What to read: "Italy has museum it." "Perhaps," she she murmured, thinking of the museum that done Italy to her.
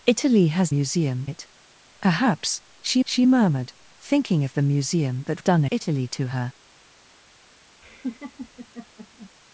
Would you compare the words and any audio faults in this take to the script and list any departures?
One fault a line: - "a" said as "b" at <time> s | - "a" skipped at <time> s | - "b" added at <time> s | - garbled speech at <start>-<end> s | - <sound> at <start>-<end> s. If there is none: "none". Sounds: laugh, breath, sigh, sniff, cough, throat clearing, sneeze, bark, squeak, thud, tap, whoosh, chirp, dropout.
- laugh at 7.8-9.3 s